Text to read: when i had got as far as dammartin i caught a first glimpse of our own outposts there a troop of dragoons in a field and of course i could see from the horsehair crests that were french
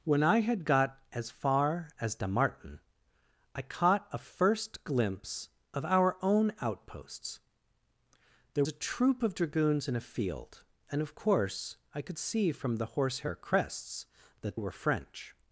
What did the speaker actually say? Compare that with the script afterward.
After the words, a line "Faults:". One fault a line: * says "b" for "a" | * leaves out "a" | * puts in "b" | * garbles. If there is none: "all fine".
when i had got as far as dammartin i caught a first glimpse of our own outposts there a troop of dragoons in a field and of course i could see from the horsehair crests that were french
Faults:
all fine